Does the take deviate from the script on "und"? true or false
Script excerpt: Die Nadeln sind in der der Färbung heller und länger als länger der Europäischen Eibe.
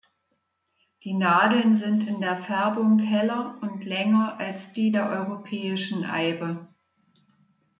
false